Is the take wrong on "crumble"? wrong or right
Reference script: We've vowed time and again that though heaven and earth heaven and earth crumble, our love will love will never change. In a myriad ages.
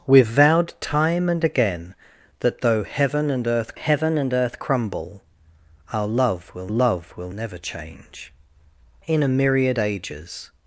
right